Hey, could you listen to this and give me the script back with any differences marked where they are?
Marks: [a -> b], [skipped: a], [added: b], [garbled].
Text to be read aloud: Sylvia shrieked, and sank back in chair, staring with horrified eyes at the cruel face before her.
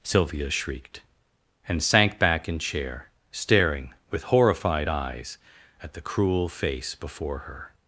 Sylvia shrieked, and sank back in chair, staring with horrified eyes at the cruel face before her.